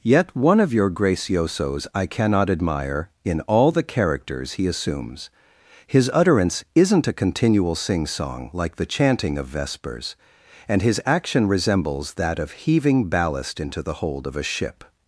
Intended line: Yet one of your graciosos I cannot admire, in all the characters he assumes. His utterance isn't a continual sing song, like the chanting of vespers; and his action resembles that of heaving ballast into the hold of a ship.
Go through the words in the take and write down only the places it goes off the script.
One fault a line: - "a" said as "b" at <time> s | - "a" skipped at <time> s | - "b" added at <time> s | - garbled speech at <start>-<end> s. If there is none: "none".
none